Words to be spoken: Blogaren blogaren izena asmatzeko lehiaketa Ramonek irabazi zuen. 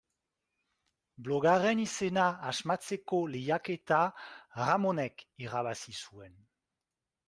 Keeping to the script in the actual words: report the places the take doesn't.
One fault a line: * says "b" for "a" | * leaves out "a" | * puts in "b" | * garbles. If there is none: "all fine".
* leaves out "blogaren"